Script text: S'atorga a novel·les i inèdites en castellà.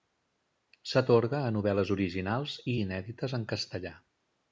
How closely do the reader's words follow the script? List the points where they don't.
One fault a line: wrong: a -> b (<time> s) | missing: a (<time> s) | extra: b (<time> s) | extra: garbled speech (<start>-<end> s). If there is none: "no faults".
extra: originals (2.0 s)